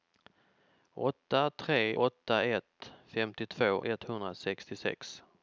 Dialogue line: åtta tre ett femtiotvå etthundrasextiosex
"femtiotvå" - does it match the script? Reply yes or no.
yes